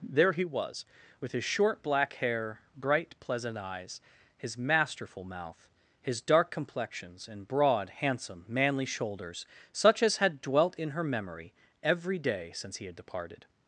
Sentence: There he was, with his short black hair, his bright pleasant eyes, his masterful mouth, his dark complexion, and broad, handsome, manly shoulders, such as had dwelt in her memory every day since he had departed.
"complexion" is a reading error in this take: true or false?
true